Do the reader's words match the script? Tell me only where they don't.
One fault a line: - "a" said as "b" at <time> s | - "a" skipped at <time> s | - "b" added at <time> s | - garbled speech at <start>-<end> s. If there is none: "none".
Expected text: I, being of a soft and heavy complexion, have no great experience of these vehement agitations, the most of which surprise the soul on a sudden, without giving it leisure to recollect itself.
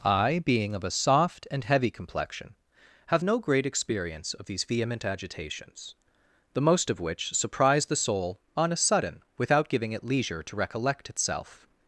none